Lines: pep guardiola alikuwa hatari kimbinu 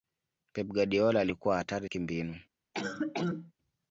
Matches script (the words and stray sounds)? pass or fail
fail